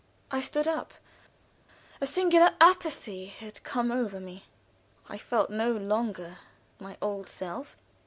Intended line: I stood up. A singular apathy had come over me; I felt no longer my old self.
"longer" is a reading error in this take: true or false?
false